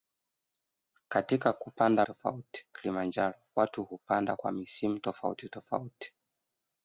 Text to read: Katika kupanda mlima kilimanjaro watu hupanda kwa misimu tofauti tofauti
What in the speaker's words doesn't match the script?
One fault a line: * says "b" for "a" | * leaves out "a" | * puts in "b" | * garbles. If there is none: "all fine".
* says "tofauti" for "mlima"